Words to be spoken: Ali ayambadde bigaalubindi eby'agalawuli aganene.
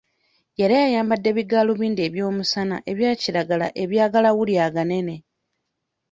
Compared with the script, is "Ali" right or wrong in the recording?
wrong